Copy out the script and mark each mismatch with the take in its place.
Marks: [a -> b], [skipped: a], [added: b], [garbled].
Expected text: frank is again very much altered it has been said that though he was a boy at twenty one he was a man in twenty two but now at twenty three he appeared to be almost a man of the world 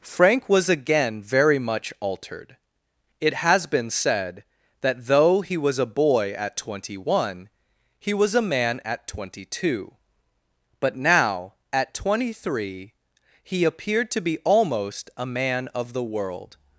frank [is -> was] again very much altered it has been said that though he was a boy at twenty one he was a man [in -> at] twenty two but now at twenty three he appeared to be almost a man of the world